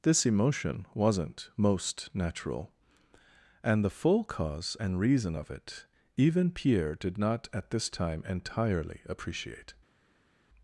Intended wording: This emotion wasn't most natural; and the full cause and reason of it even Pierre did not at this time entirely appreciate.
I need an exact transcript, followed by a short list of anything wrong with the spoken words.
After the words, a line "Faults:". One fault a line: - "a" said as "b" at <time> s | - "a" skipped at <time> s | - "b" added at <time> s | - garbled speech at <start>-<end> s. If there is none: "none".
This emotion wasn't most natural; and the full cause and reason of it even Pierre did not at this time entirely appreciate.
Faults:
none